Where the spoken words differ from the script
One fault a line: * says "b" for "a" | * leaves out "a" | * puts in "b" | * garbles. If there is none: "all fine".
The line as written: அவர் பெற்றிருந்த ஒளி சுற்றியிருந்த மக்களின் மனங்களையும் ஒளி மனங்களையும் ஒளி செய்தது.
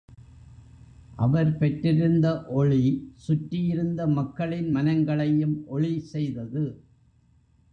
* leaves out "மனங்களையும் ஒளி"